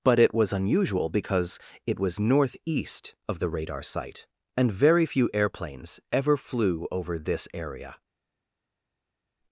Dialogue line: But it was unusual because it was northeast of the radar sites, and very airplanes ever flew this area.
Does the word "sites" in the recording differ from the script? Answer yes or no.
yes